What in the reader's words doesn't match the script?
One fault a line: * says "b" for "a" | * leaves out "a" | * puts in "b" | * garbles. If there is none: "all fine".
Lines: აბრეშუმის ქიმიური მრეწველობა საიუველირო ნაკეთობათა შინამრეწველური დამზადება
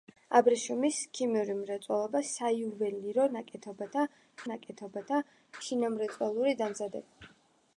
* puts in "ნაკეთობათა"